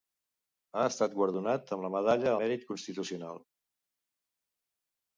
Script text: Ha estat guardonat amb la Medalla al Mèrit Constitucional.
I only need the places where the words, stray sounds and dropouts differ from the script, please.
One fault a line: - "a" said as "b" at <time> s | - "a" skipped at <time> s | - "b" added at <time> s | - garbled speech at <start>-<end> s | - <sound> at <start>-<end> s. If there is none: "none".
- "al" skipped at 2.3 s